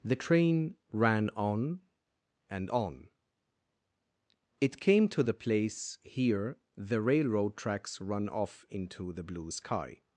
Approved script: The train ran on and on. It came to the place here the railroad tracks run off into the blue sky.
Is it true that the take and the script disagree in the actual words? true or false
false